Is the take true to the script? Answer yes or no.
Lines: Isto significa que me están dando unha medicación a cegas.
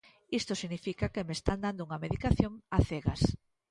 yes